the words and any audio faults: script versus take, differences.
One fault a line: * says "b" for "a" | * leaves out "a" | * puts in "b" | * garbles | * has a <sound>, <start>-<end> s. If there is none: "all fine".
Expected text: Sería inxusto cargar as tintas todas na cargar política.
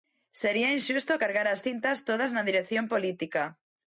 * says "dirección" for "cargar"